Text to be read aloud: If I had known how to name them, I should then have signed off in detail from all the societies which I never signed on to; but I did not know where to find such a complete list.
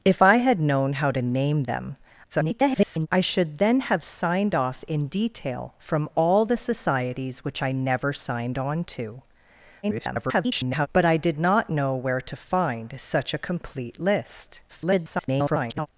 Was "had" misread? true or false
false